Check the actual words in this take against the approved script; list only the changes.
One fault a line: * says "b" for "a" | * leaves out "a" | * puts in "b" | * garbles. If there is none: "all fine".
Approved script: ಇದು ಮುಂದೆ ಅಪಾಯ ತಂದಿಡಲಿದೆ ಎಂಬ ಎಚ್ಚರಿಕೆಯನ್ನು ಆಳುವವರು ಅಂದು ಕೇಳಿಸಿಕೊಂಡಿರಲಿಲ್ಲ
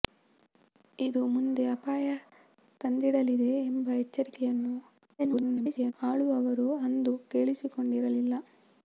* garbles